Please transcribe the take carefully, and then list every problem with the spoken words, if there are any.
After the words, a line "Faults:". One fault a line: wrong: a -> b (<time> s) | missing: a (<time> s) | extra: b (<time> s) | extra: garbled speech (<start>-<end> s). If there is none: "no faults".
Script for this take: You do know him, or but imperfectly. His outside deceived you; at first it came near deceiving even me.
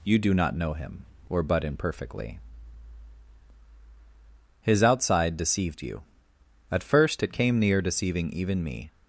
You do not know him, or but imperfectly. His outside deceived you; at first it came near deceiving even me.
Faults:
extra: not (0.3 s)